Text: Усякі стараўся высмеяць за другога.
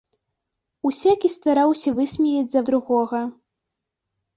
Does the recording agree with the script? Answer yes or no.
yes